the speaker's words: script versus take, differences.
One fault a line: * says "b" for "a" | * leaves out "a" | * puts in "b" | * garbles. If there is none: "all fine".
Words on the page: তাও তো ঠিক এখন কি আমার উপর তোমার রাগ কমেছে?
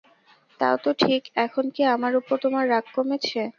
all fine